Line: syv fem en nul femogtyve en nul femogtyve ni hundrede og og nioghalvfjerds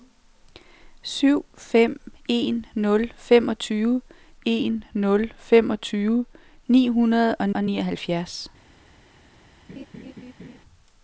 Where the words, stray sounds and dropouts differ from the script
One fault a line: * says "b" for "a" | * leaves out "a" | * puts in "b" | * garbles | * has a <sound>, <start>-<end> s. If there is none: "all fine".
* has a laugh, 9.7-10.6 s